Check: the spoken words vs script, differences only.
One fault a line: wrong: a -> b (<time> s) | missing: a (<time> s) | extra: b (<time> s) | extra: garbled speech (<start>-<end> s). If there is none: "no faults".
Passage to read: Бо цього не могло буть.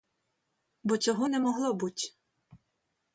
no faults